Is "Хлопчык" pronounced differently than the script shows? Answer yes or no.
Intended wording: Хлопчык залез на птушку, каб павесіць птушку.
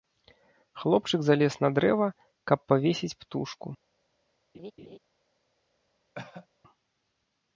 no